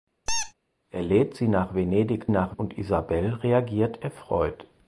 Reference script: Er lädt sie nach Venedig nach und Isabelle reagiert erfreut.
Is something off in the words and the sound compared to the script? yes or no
yes